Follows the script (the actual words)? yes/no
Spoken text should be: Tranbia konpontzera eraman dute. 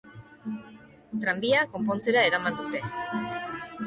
yes